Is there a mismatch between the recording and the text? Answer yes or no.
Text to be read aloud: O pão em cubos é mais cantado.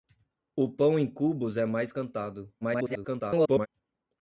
yes